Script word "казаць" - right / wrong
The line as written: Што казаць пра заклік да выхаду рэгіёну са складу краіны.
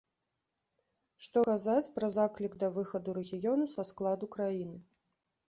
right